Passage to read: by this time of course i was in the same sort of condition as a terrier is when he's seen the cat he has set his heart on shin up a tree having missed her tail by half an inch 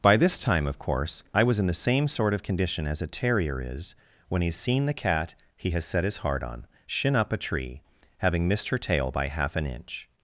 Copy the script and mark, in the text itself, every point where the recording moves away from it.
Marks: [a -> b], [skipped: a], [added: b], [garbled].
by this time of course i was in the same sort of condition as a terrier is when he's seen the cat he has set his heart on shin up a tree having missed her tail by half an inch